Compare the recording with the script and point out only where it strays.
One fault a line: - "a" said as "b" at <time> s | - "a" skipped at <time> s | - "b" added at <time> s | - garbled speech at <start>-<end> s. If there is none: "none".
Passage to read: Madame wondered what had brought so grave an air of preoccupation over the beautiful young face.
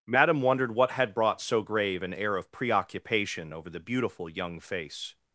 none